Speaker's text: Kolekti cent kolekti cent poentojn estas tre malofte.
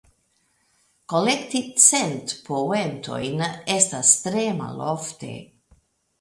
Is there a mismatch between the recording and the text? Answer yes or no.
yes